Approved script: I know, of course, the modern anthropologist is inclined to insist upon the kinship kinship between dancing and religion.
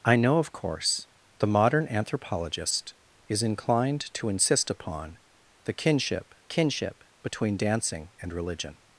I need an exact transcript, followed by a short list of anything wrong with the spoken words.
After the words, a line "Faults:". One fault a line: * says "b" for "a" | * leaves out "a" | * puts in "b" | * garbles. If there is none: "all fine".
I know, of course, the modern anthropologist is inclined to insist upon the kinship kinship between dancing and religion.
Faults:
all fine